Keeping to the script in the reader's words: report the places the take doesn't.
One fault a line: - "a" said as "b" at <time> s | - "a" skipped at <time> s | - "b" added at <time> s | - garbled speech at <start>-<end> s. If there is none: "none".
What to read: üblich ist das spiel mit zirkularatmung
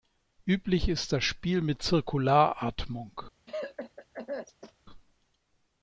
none